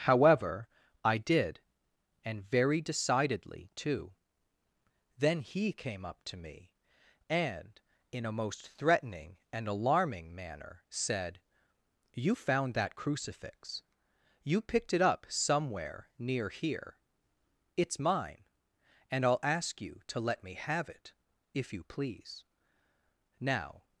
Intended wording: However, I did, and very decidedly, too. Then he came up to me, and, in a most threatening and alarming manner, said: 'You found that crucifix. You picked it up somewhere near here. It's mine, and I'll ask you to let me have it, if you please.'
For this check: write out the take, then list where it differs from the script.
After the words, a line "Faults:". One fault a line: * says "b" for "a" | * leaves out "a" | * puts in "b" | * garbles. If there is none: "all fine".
However, I did, and very decidedly, too. Then he came up to me, and, in a most threatening and alarming manner, said: 'You found that crucifix. You picked it up somewhere near here. It's mine, and I'll ask you to let me have it, if you please.' "Now
Faults:
* puts in "Now"